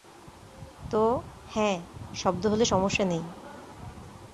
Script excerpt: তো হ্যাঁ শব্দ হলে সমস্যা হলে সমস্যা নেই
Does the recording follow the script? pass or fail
fail